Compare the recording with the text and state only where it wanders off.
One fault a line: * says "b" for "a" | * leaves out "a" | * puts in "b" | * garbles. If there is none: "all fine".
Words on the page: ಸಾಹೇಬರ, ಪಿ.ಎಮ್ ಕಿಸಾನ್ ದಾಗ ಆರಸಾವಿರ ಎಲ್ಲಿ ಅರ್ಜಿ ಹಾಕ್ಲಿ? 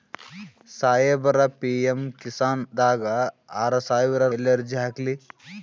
all fine